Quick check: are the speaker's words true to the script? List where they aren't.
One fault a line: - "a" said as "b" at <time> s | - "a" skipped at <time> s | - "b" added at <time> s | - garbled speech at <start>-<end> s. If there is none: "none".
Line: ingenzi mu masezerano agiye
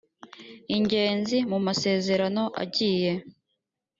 none